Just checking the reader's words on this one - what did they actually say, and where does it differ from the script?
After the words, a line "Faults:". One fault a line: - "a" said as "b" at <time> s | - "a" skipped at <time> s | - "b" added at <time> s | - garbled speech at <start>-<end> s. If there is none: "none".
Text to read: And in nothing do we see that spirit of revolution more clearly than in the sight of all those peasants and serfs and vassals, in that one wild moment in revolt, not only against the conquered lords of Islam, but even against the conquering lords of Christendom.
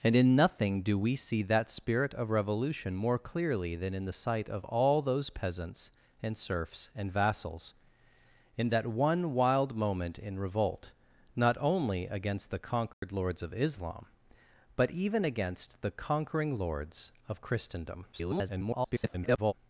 And in nothing do we see that spirit of revolution more clearly than in the sight of all those peasants and serfs and vassals, in that one wild moment in revolt, not only against the conquered lords of Islam, but even against the conquering lords of Christendom. [garbled]
Faults:
- garbled speech at 18.1-19.5 s